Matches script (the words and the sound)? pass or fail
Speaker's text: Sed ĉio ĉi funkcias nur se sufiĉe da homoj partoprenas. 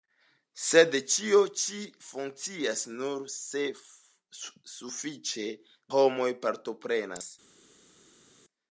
fail